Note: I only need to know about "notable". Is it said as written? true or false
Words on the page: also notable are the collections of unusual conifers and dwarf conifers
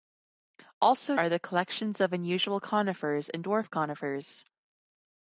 false